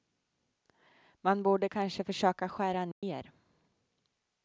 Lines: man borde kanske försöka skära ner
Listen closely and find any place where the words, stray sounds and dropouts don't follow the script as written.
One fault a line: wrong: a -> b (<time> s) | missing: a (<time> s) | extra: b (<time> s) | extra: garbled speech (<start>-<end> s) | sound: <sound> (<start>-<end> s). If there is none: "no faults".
sound: dropout (2.9-3.0 s)